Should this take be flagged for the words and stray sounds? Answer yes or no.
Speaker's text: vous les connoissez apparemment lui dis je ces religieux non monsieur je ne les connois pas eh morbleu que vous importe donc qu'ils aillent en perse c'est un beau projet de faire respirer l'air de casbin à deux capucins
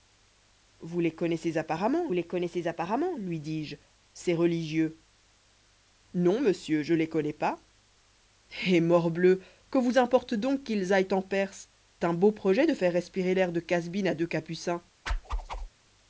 yes